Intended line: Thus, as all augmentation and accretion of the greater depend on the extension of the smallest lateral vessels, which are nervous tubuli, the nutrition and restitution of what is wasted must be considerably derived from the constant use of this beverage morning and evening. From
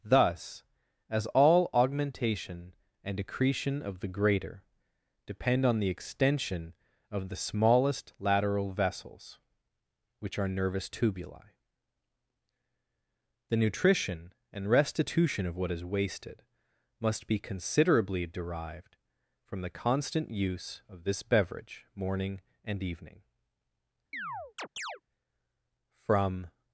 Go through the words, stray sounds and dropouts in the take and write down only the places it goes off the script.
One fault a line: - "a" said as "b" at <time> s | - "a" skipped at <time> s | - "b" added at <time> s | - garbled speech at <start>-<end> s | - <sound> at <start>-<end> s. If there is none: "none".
- chirp at 24.1-25.0 s